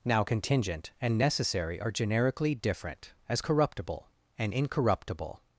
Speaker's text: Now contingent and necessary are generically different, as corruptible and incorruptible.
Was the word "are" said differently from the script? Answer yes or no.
no